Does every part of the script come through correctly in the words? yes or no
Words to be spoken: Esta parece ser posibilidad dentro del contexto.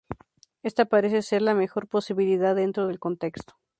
no